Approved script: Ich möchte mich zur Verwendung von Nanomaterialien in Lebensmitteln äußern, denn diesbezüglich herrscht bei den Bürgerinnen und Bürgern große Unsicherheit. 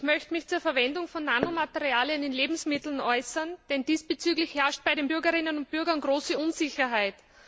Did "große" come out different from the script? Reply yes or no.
no